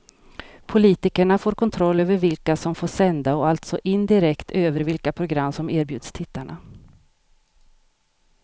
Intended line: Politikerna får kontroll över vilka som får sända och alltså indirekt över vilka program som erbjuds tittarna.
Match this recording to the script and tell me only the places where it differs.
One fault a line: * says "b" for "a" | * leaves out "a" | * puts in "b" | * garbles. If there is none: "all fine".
all fine